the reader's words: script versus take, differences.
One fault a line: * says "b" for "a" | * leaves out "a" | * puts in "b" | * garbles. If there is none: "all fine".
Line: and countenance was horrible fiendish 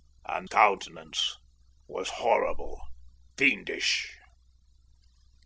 all fine